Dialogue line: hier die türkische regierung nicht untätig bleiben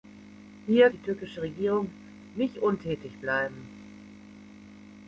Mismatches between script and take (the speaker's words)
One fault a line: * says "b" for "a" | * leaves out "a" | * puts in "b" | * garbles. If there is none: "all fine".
all fine